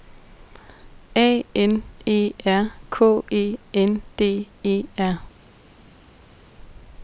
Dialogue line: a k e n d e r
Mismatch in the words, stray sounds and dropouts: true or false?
true